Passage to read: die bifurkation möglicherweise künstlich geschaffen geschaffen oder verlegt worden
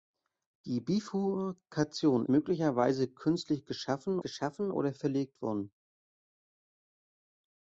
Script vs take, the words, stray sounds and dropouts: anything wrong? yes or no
no